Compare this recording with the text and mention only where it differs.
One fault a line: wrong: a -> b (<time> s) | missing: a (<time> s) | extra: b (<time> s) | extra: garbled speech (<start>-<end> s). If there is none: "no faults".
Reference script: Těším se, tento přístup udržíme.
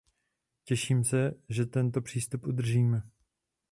extra: že (1.5 s)